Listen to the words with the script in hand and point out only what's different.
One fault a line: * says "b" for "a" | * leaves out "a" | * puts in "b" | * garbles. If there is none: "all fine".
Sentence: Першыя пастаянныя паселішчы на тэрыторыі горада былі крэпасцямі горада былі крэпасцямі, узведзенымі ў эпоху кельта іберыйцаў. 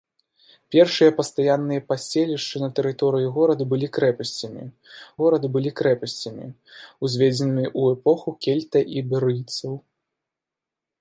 all fine